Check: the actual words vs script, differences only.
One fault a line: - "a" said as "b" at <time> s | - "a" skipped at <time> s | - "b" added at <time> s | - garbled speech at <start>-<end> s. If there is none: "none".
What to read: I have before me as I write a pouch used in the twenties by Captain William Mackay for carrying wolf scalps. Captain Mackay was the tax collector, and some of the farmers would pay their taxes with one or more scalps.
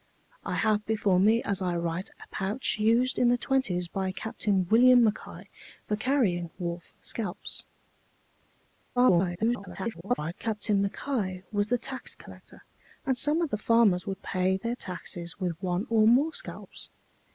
- garbled speech at 9.0-10.3 s